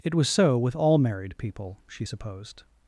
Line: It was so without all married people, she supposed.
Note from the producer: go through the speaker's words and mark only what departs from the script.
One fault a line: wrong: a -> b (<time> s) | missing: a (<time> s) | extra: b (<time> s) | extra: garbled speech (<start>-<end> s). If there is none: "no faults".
wrong: without -> with (0.6 s)